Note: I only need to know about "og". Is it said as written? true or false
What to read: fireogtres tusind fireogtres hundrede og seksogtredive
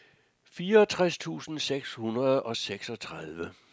true